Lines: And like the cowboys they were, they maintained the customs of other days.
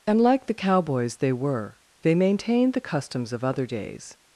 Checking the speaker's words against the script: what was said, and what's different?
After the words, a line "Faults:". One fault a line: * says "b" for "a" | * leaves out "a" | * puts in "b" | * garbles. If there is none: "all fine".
And like the cowboys they were, they maintained the customs of other days.
Faults:
all fine